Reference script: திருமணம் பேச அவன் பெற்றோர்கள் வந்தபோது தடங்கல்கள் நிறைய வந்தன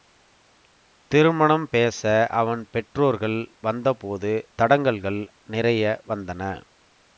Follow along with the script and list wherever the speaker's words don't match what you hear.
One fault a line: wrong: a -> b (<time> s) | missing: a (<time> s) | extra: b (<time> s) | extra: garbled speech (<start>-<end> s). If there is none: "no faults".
no faults